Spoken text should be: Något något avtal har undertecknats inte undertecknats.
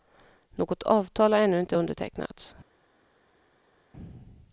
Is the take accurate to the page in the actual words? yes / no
no